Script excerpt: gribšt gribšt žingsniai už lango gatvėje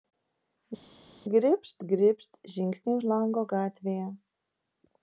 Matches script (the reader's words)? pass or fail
pass